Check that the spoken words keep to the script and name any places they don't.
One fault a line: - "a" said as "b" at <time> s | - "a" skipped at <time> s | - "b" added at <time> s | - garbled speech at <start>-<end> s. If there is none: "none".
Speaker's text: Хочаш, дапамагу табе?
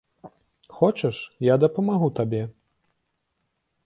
- "я" added at 1.5 s